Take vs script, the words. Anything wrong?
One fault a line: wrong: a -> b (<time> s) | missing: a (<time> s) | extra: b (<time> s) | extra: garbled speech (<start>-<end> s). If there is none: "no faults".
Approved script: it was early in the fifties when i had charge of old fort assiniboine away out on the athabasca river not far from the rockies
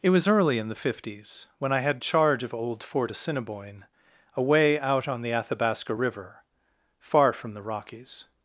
missing: not (6.4 s)